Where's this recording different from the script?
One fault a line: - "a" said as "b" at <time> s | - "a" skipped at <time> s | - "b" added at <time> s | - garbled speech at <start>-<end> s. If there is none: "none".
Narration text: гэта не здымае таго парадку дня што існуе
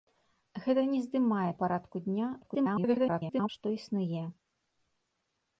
- "таго" skipped at 1.5 s
- garbled speech at 2.4-3.5 s